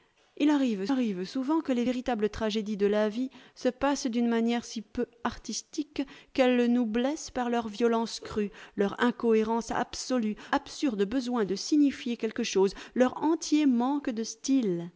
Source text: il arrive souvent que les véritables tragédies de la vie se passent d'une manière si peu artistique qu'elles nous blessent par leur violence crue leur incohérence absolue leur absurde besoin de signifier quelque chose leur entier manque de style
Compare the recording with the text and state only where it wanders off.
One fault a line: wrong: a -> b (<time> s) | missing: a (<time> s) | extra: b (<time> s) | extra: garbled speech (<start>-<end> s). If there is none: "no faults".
extra: arrive (0.9 s)
missing: leur (10.3 s)